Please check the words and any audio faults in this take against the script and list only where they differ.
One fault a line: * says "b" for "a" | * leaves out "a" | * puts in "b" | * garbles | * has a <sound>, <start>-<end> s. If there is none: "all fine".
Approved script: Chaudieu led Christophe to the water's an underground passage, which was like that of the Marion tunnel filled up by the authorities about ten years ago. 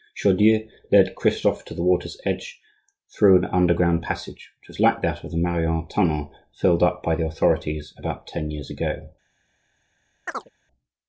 * puts in "edge through"
* has a chirp, 10.3-10.5 s